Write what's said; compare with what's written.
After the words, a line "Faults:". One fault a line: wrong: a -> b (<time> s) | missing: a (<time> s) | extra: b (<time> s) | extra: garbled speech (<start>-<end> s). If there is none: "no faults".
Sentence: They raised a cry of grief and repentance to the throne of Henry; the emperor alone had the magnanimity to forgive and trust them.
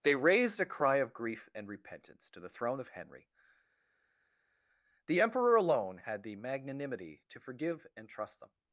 They raised a cry of grief and repentance to the throne of Henry; the emperor alone had the magnanimity to forgive and trust them.
Faults:
no faults